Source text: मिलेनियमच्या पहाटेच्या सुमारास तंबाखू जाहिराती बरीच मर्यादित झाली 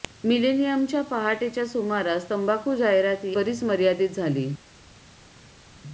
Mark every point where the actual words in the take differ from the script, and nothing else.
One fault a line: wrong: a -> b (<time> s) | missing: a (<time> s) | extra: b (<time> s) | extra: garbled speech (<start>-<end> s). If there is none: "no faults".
no faults